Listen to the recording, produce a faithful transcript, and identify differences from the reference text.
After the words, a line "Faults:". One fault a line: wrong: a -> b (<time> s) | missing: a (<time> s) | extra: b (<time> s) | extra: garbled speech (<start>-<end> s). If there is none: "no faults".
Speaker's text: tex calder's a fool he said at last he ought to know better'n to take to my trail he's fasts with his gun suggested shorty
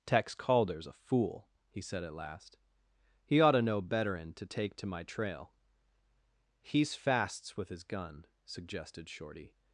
tex calder's a fool he said at last he ought to know better'n to take to my trail he's fasts with his gun suggested shorty
Faults:
no faults